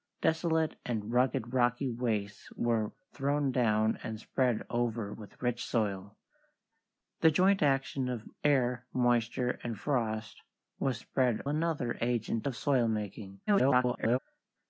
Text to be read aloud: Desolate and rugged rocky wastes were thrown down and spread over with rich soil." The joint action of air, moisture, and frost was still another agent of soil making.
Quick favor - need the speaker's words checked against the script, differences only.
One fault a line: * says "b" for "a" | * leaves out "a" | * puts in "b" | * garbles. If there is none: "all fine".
* says "spread" for "still"
* garbles